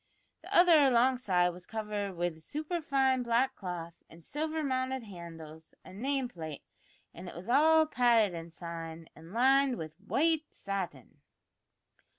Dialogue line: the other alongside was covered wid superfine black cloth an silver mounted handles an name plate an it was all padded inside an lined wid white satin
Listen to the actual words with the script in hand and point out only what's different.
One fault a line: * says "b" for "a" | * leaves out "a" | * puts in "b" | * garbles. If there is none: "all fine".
all fine